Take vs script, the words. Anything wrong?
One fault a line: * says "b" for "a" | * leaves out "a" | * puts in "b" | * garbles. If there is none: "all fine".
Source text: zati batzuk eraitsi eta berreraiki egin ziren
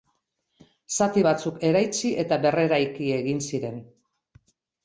all fine